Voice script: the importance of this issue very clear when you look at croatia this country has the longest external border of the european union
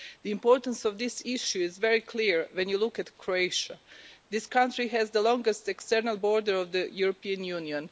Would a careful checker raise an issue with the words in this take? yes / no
yes